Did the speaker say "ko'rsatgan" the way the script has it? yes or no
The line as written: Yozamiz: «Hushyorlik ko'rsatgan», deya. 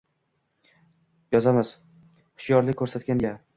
yes